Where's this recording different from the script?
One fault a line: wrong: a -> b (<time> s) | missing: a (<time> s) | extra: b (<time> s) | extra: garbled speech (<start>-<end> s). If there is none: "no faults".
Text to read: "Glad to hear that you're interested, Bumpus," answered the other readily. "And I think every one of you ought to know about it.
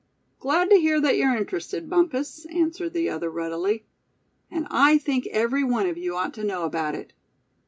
no faults